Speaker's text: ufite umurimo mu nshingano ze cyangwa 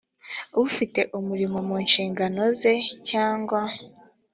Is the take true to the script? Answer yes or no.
yes